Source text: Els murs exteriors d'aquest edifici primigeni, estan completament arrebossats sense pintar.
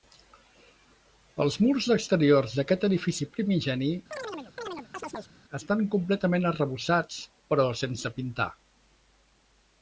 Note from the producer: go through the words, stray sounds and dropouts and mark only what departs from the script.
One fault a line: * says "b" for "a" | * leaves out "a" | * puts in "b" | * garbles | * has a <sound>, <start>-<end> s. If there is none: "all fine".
* has a chirp, 4.1-5.3 s
* puts in "però"